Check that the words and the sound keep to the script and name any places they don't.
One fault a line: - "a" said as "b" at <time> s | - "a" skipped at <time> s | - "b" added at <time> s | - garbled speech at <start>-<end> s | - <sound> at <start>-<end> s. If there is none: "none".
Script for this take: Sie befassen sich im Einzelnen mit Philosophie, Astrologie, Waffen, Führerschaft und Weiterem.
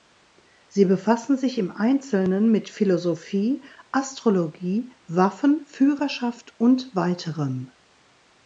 none